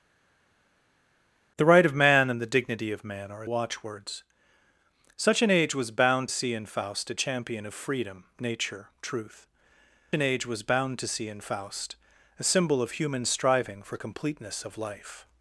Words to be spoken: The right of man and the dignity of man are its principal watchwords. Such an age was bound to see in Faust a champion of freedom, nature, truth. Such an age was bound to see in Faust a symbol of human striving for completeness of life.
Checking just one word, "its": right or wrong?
wrong